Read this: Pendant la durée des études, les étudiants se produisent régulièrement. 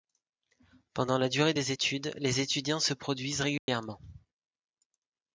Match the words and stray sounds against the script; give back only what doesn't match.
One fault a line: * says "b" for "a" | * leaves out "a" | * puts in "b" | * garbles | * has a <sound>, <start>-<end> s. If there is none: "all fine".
* has a dropout, 3.6-3.7 s